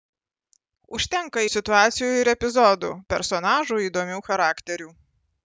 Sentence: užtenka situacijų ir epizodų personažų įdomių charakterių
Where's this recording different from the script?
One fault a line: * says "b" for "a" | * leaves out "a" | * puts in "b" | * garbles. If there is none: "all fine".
all fine